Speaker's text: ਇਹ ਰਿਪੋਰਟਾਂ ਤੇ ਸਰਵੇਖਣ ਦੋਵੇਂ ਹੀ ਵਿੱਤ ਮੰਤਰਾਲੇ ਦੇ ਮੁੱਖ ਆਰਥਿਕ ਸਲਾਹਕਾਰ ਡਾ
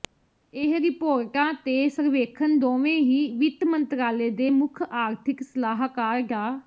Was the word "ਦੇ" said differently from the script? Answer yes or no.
no